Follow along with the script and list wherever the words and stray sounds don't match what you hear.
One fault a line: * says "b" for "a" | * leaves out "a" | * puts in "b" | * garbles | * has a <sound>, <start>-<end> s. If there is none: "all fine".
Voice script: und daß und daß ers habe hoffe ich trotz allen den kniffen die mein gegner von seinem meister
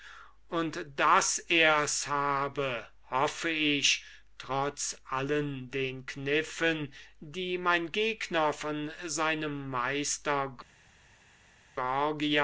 * leaves out "und daß"